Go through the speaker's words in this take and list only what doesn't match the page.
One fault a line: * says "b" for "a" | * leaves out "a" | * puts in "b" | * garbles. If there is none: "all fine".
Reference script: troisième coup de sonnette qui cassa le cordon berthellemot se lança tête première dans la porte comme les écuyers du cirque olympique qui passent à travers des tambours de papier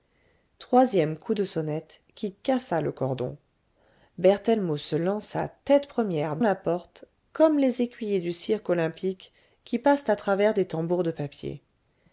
* leaves out "dans"